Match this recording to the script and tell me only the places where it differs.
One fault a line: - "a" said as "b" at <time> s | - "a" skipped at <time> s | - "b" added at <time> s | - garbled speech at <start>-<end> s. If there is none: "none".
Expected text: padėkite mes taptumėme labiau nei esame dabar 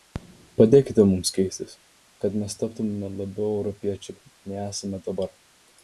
- "mums keistis kad" added at 1.1 s
- "europiečiai" added at 3.6 s